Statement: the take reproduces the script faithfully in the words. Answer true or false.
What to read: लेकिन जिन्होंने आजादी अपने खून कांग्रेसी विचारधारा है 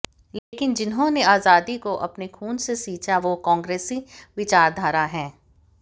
false